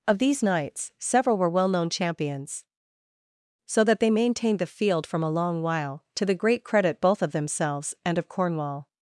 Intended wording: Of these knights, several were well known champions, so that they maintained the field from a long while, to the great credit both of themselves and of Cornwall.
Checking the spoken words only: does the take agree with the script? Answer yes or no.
yes